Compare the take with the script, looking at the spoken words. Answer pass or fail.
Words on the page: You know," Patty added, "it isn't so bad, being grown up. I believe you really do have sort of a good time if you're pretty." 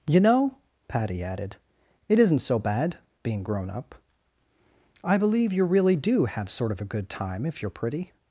pass